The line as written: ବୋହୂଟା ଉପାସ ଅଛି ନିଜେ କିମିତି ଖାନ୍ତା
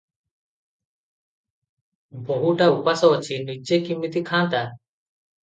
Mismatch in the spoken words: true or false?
false